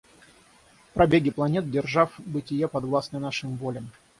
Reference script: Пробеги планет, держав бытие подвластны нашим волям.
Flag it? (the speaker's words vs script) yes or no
no